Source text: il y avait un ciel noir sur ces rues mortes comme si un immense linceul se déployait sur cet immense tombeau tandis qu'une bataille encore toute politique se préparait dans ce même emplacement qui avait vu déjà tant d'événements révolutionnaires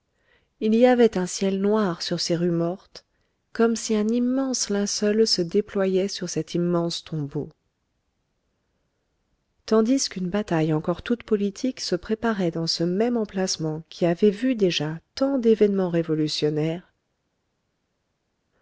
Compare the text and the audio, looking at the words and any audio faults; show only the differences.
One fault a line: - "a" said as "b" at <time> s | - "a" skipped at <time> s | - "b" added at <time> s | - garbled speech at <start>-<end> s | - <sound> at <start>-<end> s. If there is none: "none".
none